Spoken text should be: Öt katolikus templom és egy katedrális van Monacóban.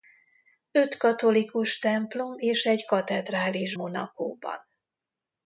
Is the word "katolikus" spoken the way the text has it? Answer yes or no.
yes